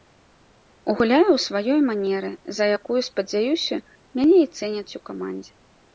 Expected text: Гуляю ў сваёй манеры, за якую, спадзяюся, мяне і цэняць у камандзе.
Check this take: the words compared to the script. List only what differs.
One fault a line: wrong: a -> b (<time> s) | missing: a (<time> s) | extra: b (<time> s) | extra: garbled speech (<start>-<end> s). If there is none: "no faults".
no faults